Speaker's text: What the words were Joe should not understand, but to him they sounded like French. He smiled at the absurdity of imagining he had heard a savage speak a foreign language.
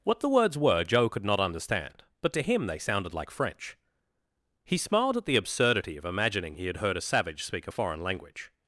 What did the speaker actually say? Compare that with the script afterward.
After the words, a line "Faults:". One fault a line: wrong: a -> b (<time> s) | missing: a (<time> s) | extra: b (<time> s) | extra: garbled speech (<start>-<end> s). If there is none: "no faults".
What the words were Joe could not understand, but to him they sounded like French. He smiled at the absurdity of imagining he had heard a savage speak a foreign language.
Faults:
wrong: should -> could (1.1 s)